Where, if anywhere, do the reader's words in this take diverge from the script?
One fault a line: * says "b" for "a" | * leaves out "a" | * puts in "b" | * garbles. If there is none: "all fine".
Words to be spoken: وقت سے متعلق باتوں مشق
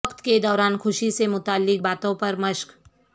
* puts in "کے دوران خوشی"
* puts in "پر"